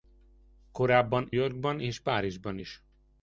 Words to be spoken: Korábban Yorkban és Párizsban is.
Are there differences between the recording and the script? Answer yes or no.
no